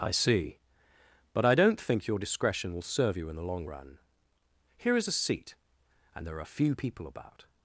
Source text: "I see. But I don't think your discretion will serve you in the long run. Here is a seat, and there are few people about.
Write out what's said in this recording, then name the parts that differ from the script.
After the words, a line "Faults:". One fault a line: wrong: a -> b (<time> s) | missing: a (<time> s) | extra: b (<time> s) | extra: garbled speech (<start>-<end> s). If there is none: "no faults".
"I see. But I don't think your discretion will serve you in the long run. Here is a seat, and there are few people about.
Faults:
no faults